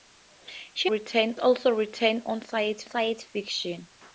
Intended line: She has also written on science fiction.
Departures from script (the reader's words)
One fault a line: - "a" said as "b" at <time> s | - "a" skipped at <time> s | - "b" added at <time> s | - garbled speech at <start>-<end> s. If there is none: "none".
- "has" said as "written" at 0.8 s
- "science" added at 2.8 s